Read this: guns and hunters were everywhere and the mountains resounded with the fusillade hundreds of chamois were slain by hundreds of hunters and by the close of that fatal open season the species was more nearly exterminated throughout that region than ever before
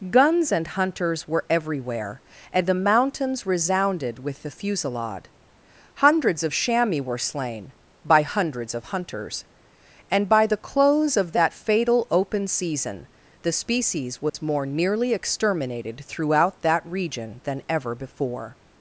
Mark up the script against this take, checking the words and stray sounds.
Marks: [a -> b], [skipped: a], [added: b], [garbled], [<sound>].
guns and hunters were everywhere and the mountains resounded with the fusillade hundreds of chamois were slain by hundreds of hunters and by the close of that fatal open season the species was [dropout] more nearly exterminated throughout that region than ever before